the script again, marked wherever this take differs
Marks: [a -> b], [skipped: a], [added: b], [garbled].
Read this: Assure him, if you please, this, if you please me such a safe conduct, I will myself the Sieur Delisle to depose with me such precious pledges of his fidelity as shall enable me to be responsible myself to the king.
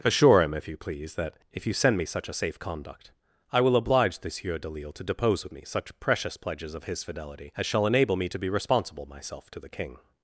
Assure him, if you please, [this, -> that] if you [please -> send] me such a safe conduct, I will [myself -> oblige] the Sieur Delisle to depose with me such precious pledges of his fidelity as shall enable me to be responsible myself to the king.